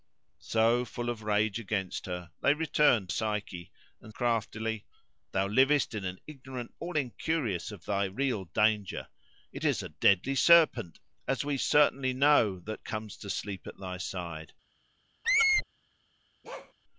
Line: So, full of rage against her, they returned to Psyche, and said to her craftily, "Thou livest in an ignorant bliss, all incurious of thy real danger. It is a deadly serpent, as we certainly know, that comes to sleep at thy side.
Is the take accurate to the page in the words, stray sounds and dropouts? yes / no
no